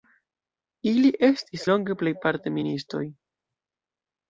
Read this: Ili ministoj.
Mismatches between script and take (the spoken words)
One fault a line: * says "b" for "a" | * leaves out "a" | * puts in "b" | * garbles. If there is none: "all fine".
* puts in "estis longe plejparte"